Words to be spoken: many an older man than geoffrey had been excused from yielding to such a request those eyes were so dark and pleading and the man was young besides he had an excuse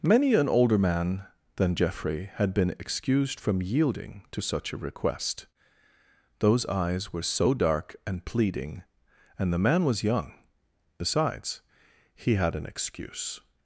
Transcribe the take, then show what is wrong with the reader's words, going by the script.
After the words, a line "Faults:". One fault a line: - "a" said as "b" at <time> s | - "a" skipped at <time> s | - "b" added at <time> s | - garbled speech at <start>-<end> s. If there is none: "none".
many an older man than geoffrey had been excused from yielding to such a request those eyes were so dark and pleading and the man was young besides he had an excuse
Faults:
none